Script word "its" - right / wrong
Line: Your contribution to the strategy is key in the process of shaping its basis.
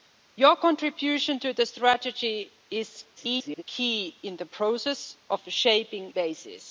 wrong